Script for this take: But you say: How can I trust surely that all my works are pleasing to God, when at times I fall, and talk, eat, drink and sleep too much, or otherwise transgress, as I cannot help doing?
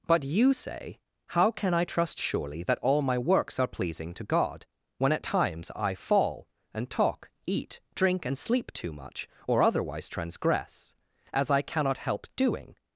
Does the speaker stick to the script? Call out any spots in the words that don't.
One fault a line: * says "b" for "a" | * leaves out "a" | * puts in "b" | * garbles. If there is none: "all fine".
all fine